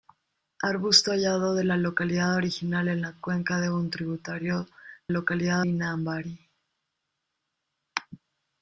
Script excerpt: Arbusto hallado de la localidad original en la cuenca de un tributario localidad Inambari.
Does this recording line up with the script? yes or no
yes